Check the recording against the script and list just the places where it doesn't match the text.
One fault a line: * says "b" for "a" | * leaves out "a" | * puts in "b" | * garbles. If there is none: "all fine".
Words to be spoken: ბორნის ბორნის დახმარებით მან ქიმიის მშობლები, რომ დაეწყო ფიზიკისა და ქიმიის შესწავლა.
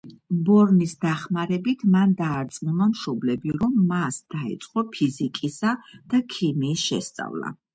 * leaves out "ბორნის"
* says "დაარწმუნა" for "ქიმიის"
* puts in "მას"